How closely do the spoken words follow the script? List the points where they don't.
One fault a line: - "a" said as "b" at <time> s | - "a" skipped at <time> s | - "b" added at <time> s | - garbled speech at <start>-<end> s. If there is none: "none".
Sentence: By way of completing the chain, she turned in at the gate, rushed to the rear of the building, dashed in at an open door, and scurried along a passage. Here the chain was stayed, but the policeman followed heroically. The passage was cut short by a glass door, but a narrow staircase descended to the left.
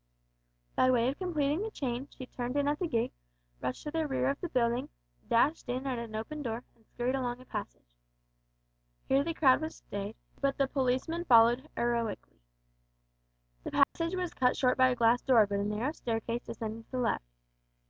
- "chain" said as "crowd" at 9.3 s